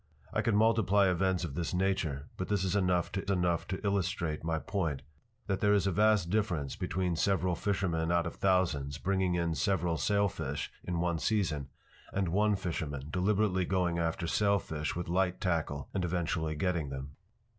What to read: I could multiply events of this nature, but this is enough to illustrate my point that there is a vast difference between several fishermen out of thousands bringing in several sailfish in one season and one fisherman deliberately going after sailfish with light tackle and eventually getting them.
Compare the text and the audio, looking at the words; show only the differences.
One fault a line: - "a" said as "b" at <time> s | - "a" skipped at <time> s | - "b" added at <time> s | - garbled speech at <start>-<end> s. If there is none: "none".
- "enough to" added at 3.3 s